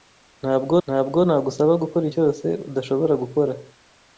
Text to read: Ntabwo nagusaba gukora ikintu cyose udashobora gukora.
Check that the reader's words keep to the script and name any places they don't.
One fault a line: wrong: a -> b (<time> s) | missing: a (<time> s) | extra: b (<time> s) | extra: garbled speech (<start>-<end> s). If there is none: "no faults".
extra: ntabwo (0.9 s)
missing: ikintu (2.0 s)